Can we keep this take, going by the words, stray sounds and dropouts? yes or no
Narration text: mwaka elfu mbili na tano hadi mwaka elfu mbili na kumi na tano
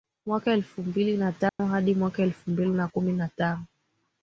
no